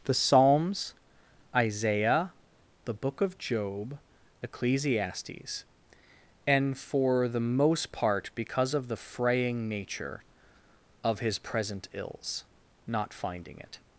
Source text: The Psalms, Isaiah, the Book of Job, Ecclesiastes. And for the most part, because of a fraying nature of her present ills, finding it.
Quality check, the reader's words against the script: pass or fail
fail